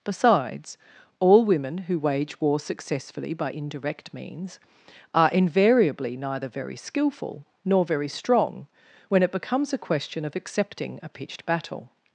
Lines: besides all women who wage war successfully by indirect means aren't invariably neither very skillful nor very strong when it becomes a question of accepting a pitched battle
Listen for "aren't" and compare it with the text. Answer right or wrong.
wrong